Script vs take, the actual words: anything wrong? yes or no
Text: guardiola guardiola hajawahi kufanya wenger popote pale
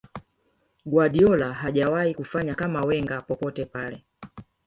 yes